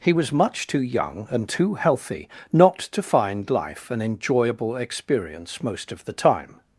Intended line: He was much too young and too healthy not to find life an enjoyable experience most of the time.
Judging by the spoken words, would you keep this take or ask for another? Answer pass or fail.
pass